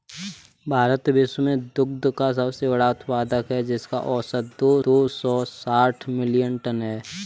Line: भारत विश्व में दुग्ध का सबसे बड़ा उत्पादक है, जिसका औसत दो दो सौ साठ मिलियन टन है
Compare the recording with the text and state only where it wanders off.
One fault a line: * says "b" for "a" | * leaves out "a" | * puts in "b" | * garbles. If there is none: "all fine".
all fine